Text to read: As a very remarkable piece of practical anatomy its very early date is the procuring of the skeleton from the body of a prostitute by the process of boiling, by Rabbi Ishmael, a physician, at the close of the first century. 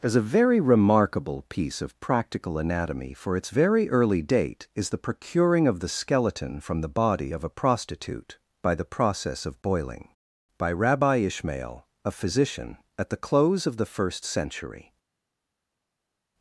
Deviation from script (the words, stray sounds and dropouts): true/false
true